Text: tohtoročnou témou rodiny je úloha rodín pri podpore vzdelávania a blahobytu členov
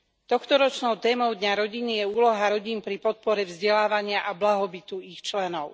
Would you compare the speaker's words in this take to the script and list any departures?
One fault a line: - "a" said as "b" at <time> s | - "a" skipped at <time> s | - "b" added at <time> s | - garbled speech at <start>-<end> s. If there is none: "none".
- "dňa" added at 1.4 s
- "ich" added at 5.0 s